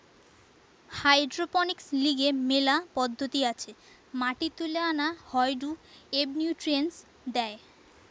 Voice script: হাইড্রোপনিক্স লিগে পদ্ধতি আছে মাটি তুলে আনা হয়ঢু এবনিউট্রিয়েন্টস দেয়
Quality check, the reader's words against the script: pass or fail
fail